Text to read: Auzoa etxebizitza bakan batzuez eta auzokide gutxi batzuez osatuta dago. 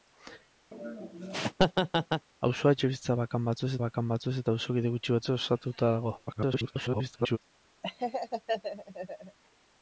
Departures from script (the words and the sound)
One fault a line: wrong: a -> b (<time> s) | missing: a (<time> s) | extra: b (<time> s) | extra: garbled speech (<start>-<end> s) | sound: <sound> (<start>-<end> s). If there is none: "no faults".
sound: laugh (0.7-2.3 s)
extra: bakan batzuez (3.8 s)
extra: garbled speech (6.3-7.4 s)
sound: laugh (7.8-9.4 s)